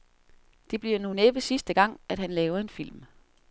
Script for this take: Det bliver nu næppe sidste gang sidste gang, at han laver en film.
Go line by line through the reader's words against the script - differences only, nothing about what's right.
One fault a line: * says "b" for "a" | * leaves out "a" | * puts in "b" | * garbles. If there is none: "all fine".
* leaves out "sidste gang"